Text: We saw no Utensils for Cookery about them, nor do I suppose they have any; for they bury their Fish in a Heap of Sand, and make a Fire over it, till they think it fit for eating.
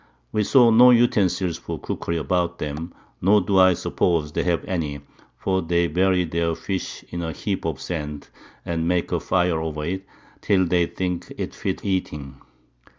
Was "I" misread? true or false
false